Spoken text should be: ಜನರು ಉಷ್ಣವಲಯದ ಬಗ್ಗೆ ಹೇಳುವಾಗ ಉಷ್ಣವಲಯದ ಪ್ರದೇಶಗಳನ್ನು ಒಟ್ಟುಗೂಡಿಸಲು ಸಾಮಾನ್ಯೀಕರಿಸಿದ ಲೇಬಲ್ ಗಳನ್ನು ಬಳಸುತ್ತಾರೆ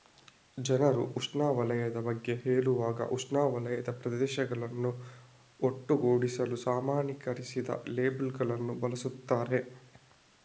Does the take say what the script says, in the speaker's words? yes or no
yes